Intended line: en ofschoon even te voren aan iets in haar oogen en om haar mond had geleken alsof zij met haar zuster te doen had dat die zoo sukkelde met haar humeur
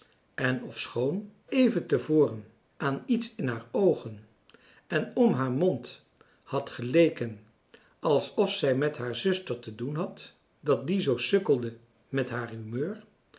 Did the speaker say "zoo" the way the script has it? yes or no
yes